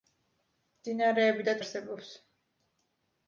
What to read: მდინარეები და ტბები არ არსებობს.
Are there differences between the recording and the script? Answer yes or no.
yes